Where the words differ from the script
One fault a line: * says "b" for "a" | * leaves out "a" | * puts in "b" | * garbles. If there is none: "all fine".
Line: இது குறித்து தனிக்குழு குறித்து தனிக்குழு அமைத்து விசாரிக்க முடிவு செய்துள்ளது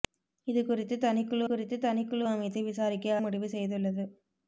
all fine